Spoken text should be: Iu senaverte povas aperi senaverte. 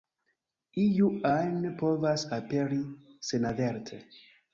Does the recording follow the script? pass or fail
fail